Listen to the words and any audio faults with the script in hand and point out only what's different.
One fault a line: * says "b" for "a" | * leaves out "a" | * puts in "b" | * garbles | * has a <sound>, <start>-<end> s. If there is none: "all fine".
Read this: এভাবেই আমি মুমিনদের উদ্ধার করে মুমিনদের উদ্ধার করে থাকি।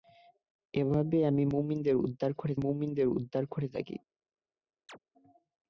* has a chirp, 4.9-5.0 s